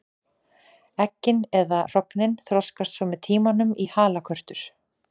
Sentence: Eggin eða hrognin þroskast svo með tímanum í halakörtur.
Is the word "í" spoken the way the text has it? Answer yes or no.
yes